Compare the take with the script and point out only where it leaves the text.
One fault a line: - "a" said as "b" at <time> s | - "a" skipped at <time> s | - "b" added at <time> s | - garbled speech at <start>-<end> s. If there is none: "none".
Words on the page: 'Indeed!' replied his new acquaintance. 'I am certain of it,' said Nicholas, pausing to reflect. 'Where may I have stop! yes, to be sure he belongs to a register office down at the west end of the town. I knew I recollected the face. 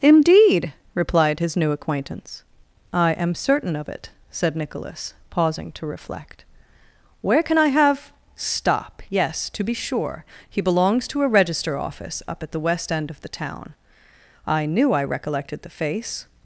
- "may" said as "can" at 7.4 s
- "down" said as "up" at 12.3 s